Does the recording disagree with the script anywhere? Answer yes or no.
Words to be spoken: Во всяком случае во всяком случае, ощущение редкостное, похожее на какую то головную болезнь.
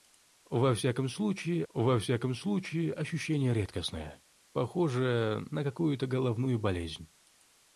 no